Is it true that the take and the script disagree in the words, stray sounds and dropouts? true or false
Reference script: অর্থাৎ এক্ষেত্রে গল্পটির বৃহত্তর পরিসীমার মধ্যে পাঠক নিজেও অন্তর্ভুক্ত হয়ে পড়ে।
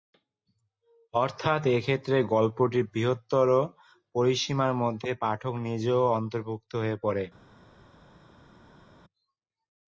false